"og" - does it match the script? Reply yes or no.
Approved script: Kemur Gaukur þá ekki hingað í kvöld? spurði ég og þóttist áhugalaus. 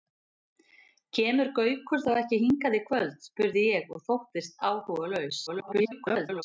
yes